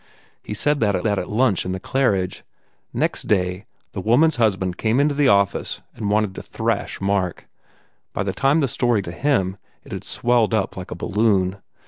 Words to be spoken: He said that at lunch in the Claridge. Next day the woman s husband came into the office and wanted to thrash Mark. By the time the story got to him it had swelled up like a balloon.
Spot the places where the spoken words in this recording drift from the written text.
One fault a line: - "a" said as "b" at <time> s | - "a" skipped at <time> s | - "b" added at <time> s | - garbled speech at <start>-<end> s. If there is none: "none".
- "that at" added at 1.0 s
- "got" skipped at 9.0 s